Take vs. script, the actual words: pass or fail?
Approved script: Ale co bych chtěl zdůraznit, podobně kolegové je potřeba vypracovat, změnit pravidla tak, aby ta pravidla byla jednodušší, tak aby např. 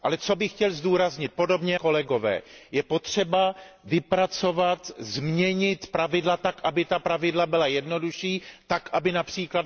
pass